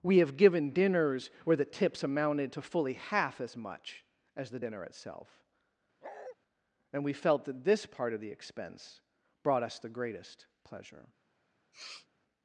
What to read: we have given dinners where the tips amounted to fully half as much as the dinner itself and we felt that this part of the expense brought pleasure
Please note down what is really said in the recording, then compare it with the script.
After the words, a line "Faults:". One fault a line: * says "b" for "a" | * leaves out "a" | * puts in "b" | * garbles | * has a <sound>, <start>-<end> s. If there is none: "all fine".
we have given dinners where the tips amounted to fully half as much as the dinner itself and we felt that this part of the expense brought us the greatest pleasure
Faults:
* has a bark, 6.0-6.4 s
* puts in "us the greatest"
* has a sniff, 11.7-12.1 s